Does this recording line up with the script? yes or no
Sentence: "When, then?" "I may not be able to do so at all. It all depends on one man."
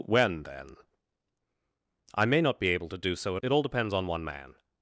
no